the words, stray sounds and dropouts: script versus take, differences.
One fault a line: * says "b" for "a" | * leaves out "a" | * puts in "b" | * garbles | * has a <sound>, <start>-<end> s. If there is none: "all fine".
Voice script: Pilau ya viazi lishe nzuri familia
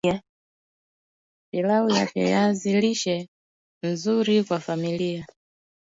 * puts in "kwa"